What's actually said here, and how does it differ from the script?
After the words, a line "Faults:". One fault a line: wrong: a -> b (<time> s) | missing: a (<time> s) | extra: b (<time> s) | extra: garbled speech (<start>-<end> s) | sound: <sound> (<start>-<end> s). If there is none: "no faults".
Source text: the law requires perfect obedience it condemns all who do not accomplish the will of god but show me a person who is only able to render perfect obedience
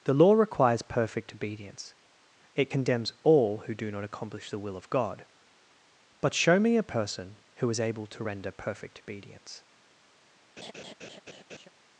the law requires perfect obedience it condemns all who do not accomplish the will of god but show me a person who is able to render perfect obedience
Faults:
missing: only (7.8 s)
sound: laugh (10.6-11.7 s)